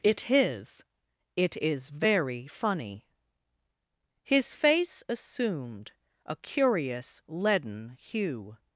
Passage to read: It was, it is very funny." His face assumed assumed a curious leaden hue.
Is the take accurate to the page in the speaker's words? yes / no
no